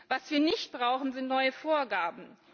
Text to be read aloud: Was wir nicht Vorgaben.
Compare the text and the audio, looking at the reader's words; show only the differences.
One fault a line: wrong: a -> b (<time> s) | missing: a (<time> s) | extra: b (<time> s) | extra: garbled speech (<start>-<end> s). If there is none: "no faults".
extra: brauchen sind neue (0.7 s)